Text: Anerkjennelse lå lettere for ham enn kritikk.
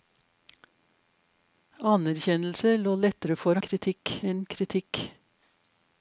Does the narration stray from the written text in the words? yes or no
yes